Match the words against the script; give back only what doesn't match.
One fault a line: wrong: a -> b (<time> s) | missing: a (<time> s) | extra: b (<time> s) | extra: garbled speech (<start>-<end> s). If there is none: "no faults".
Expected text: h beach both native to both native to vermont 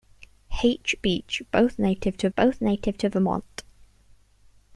no faults